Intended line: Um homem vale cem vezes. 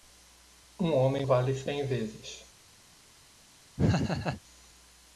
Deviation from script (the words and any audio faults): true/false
true